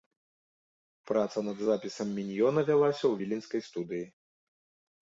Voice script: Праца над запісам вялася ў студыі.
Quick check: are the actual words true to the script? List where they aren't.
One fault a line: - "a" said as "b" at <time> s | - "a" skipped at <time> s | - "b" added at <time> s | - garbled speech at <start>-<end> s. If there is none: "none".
- "міньёна" added at 2.2 s
- "віленскай" added at 3.2 s